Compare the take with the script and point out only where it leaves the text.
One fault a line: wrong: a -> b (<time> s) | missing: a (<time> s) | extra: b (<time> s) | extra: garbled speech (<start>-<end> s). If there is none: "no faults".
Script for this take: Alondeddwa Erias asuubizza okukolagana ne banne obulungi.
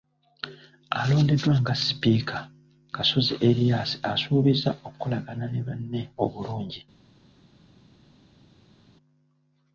extra: nga sipiika Kasozi (1.6 s)